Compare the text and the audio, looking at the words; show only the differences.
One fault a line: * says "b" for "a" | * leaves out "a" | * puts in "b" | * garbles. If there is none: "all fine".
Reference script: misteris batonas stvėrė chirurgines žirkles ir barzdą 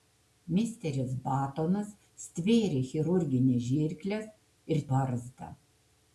all fine